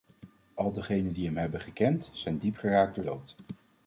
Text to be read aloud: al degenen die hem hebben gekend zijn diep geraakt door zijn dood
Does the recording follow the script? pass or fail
fail